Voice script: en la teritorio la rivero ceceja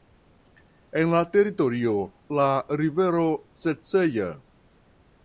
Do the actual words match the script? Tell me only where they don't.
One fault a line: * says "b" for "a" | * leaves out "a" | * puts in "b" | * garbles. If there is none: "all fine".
all fine